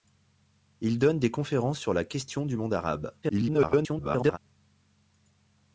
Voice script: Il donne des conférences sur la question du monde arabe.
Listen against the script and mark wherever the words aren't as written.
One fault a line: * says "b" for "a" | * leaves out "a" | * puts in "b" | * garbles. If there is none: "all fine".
* garbles